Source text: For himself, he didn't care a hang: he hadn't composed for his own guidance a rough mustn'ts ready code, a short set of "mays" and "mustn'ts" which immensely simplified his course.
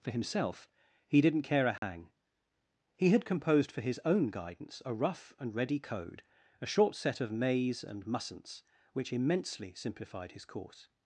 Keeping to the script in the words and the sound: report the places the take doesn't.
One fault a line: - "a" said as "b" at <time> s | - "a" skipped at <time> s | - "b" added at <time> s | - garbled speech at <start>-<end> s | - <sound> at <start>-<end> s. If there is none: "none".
- dropout at 1.8-1.8 s
- "hadn't" said as "had" at 3.1 s
- "mustn'ts" said as "and" at 5.4 s